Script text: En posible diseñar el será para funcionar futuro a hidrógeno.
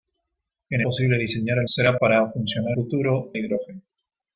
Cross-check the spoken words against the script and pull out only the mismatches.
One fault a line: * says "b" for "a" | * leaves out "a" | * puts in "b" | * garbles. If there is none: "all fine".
all fine